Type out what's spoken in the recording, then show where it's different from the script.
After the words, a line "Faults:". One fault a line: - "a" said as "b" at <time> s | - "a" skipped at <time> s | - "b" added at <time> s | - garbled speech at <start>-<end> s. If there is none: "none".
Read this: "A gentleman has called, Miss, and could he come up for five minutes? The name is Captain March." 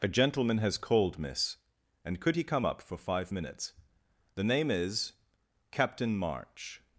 "A gentleman has called, Miss, and could he come up for five minutes? The name is Captain March."
Faults:
none